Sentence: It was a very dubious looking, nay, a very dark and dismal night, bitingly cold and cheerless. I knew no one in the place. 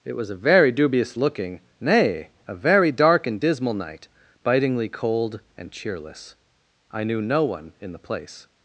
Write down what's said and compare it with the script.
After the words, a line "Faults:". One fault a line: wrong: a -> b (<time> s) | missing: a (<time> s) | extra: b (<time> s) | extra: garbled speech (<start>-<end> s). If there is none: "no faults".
It was a very dubious looking, nay, a very dark and dismal night, bitingly cold and cheerless. I knew no one in the place.
Faults:
no faults